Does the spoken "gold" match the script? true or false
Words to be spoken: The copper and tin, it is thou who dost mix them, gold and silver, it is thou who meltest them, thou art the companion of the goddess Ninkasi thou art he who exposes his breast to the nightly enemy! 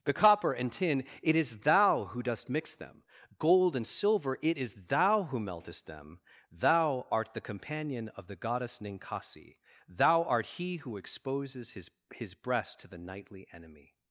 true